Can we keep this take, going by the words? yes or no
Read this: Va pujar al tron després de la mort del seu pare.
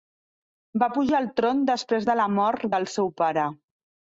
yes